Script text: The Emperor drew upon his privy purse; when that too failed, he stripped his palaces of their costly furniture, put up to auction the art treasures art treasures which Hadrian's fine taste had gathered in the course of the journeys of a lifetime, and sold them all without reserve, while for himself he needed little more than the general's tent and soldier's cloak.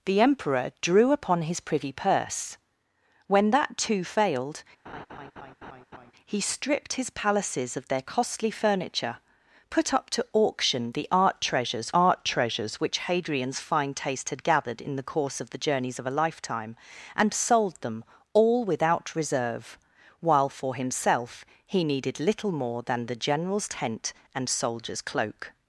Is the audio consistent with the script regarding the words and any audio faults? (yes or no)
no